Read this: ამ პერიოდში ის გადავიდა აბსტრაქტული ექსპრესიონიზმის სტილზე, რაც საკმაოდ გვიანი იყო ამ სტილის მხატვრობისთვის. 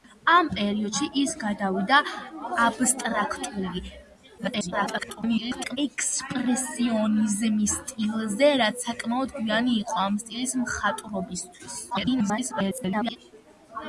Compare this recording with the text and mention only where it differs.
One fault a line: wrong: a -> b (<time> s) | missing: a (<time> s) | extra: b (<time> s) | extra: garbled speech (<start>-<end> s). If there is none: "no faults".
extra: garbled speech (4.4-5.8 s)
extra: garbled speech (11.9-13.2 s)